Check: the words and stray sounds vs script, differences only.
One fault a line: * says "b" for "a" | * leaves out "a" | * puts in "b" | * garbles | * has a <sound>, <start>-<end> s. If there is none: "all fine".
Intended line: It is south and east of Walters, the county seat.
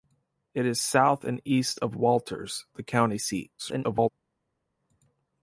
* garbles